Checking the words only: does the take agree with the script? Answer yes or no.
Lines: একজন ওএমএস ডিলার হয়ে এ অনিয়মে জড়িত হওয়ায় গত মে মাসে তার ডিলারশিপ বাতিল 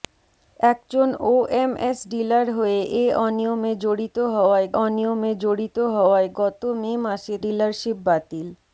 no